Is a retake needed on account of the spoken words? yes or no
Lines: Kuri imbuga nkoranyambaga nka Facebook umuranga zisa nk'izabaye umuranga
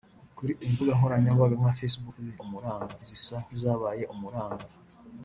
no